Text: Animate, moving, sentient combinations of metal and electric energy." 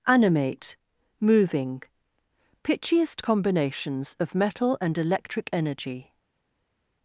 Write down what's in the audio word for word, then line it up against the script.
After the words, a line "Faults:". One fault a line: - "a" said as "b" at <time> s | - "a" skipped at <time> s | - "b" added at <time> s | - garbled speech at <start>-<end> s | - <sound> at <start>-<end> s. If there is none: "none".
Animate, moving, pitchiest combinations of metal and electric energy."
Faults:
- "sentient" said as "pitchiest" at 2.6 s